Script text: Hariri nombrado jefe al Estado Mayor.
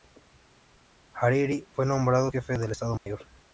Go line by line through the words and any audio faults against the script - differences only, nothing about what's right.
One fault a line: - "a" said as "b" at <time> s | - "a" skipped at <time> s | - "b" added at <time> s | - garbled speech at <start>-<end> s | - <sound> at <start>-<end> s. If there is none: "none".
- "fue" added at 1.7 s
- "al" said as "del" at 2.6 s
- dropout at 3.0-3.1 s